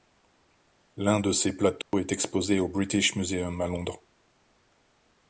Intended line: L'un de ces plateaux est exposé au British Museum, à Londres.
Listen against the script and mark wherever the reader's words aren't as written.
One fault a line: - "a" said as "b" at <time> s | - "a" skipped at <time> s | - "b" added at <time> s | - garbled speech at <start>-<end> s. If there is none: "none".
none